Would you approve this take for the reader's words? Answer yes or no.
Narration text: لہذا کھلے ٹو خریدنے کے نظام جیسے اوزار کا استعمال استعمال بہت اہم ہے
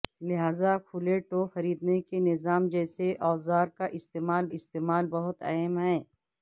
yes